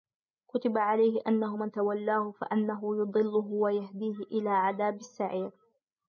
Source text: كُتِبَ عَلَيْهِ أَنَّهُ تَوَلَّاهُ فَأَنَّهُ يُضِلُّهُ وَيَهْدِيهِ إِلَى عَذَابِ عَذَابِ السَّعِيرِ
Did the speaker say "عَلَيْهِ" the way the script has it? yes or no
yes